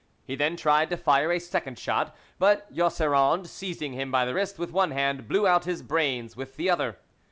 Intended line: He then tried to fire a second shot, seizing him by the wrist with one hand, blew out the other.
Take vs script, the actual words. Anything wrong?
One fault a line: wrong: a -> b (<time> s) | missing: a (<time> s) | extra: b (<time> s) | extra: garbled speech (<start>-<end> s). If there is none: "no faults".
extra: but Jausserand (2.4 s)
extra: his brains with (5.6 s)